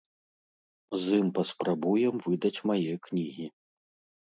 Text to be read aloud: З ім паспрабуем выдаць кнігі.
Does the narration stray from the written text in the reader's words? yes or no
yes